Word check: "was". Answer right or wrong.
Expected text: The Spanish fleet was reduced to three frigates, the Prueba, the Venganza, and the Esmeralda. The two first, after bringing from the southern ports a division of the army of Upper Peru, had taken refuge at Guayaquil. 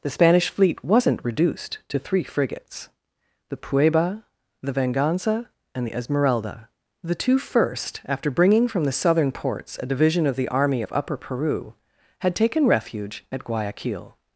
wrong